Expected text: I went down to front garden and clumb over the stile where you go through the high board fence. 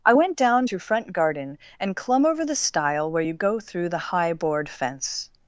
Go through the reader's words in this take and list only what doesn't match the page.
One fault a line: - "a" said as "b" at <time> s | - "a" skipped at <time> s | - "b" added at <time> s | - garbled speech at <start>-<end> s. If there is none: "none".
none